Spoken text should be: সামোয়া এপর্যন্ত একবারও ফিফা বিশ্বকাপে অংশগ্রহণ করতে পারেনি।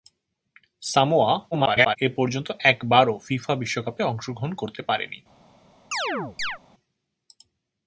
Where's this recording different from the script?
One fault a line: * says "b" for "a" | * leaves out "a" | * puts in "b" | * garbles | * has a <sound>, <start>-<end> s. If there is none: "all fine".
* garbles
* has a chirp, 5.9-6.6 s